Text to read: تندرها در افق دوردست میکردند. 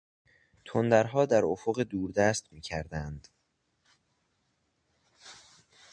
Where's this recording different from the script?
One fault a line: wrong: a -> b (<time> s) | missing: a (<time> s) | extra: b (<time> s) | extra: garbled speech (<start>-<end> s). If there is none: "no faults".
no faults